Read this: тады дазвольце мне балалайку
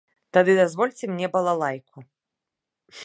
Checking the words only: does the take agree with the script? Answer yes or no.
yes